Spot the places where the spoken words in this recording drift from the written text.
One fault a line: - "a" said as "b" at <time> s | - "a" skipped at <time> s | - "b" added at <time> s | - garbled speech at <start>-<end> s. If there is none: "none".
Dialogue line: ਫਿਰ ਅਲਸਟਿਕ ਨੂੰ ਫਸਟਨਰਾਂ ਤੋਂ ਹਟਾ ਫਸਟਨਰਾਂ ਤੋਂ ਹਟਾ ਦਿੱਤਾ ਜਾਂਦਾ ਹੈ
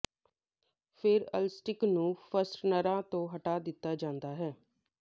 - "ਫਸਟਨਰਾਂ ਤੋਂ ਹਟਾ" skipped at 3.6 s